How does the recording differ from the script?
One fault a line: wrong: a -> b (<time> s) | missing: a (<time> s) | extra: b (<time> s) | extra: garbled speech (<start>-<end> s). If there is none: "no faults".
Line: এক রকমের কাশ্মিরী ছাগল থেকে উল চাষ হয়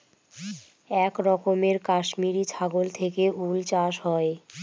no faults